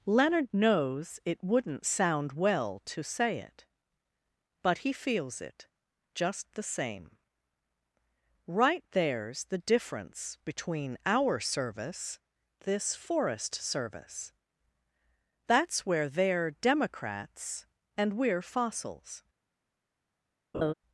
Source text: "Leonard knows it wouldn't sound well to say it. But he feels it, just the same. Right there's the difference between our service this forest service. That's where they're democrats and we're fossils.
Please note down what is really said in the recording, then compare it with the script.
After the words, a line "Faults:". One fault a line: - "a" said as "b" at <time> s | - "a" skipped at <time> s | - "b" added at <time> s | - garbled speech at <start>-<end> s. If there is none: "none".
"Leonard knows it wouldn't sound well to say it. But he feels it, just the same. Right there's the difference between our service this forest service. That's where they're democrats and we're fossils.
Faults:
none